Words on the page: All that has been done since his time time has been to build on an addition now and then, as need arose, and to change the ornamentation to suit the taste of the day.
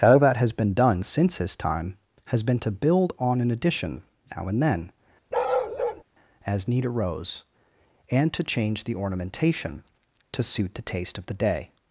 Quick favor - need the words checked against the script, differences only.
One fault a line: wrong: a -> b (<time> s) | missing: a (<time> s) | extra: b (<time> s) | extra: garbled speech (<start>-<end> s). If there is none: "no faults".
missing: time (1.9 s)